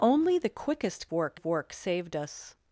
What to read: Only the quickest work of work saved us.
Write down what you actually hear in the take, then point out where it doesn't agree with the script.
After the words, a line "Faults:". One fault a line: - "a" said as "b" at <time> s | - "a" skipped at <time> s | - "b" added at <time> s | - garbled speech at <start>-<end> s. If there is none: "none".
Only the quickest work of work saved us.
Faults:
none